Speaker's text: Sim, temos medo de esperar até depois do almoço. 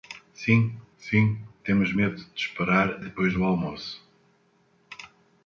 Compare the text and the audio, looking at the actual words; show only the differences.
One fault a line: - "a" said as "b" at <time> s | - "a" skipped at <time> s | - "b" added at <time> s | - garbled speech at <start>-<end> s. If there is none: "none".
- "sim" added at 1.0 s
- "até" skipped at 3.0 s